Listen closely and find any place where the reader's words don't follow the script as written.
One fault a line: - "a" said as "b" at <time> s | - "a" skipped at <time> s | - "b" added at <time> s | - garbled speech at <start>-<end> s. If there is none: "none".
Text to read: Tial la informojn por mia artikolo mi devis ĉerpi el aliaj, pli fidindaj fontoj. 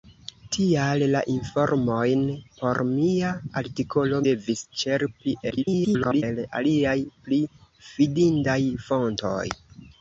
- "mi" skipped at 4.2 s
- garbled speech at 5.5-6.2 s